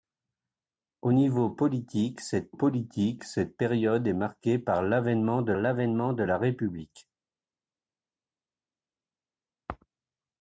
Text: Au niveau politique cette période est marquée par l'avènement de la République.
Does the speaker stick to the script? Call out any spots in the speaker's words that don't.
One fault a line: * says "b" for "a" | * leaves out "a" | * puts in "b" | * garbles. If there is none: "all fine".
* puts in "politique cette"
* puts in "l'avènement de"